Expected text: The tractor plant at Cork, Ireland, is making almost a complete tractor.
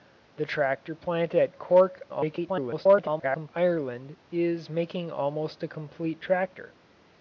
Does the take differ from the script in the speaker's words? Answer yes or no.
yes